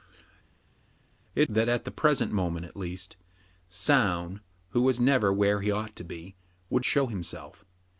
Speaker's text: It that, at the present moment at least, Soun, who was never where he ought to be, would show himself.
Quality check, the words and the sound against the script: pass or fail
pass